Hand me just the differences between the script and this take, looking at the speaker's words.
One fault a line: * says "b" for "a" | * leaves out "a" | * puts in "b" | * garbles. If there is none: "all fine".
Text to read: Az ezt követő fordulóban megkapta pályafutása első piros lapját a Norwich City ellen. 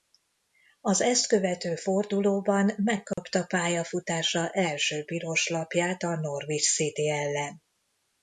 all fine